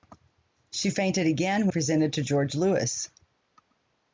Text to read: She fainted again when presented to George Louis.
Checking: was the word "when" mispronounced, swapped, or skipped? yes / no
yes